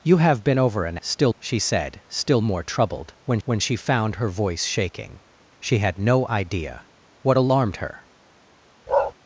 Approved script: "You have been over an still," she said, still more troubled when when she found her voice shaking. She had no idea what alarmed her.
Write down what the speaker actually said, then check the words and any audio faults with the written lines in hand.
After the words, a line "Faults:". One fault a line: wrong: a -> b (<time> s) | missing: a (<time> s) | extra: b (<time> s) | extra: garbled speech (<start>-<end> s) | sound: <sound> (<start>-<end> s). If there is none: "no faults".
"You have been over an still," she said, still more troubled when when she found her voice shaking. She had no idea what alarmed her.
Faults:
sound: bark (8.9-9.1 s)